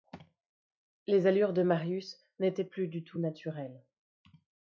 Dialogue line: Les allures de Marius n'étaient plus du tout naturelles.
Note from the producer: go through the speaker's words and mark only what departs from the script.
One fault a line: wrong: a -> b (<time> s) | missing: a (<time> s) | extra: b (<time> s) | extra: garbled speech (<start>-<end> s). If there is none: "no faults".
no faults